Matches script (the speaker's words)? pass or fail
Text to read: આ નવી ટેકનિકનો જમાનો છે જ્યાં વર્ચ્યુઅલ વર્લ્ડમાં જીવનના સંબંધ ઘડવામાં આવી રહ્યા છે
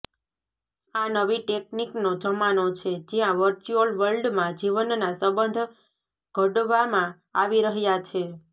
pass